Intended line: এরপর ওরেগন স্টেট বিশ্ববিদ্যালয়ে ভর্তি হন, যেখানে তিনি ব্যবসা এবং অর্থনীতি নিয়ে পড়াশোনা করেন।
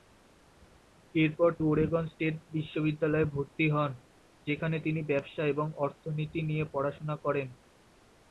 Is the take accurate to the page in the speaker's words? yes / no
yes